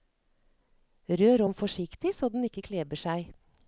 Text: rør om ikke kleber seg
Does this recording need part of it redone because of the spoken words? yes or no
yes